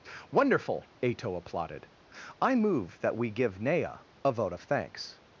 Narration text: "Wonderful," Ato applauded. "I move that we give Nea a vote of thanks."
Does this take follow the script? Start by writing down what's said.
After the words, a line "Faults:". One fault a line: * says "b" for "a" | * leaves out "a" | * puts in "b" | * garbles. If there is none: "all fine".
"Wonderful," Ato applauded. "I move that we give Nea a vote of thanks."
Faults:
all fine